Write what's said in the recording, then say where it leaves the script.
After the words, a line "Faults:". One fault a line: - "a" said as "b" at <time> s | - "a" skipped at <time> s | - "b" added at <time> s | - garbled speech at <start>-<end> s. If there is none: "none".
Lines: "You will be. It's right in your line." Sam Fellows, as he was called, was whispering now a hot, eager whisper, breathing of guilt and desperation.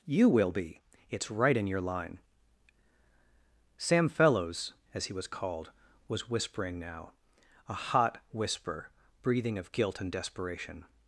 "You will be. It's right in your line." Sam Fellows, as he was called, was whispering now a hot, whisper, breathing of guilt and desperation.
Faults:
- "eager" skipped at 8.2 s